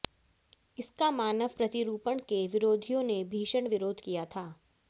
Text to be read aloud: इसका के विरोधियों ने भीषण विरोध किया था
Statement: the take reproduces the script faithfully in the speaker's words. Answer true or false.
false